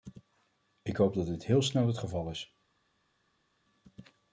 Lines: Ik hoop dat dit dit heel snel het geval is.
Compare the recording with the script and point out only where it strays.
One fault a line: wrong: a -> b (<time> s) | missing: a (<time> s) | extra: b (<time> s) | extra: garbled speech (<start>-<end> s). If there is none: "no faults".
missing: dit (1.4 s)